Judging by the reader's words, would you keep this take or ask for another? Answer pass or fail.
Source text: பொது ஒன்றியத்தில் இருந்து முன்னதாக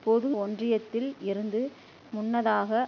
pass